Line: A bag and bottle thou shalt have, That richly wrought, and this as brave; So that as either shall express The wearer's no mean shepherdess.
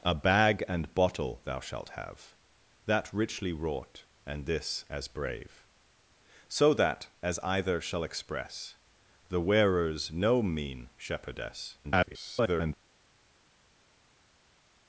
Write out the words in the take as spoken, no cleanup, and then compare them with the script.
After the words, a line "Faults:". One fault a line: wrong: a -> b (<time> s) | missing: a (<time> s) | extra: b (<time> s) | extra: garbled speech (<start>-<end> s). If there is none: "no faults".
A bag and bottle thou shalt have, That richly wrought, and this as brave; So that as either shall express The wearer's no mean shepherdess. [garbled]
Faults:
extra: garbled speech (11.8-12.7 s)